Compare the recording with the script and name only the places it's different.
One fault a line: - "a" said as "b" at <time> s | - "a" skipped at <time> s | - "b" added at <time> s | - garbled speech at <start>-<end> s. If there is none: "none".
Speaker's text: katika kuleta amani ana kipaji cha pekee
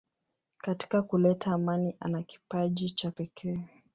none